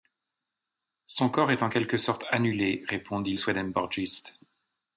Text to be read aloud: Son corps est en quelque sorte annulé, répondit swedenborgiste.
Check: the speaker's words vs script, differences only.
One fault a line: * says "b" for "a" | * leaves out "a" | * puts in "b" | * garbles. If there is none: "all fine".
all fine